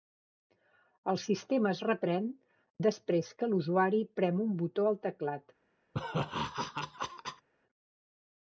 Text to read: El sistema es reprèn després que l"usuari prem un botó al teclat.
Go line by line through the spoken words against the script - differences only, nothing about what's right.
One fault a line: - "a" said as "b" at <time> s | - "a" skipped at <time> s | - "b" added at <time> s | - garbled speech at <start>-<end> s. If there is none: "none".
none